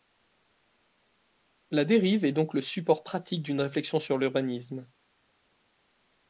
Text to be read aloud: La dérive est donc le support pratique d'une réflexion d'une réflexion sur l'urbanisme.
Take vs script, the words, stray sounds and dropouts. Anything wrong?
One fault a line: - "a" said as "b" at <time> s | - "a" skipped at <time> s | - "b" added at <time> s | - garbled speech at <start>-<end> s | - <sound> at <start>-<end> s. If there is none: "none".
- "d'une réflexion" skipped at 4.0 s